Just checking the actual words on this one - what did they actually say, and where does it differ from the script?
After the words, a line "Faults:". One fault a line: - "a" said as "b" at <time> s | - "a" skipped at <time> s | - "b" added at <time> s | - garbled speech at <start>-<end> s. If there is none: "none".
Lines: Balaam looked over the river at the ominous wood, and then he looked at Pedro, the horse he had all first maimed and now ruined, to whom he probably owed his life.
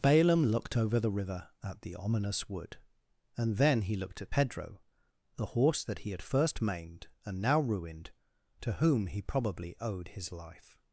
Balaam looked over the river at the ominous wood, and then he looked at Pedro, the horse that he had first maimed and now ruined, to whom he probably owed his life.
Faults:
- "that" added at 5.8 s
- "all" skipped at 6.2 s